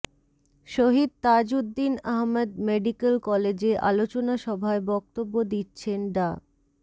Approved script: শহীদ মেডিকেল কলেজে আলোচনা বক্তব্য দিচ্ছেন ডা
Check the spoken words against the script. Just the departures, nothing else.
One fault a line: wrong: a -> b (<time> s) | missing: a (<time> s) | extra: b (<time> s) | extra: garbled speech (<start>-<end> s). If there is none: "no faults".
extra: তাজউদ্দীন আহমদ (1.2 s)
extra: সভায় (4.4 s)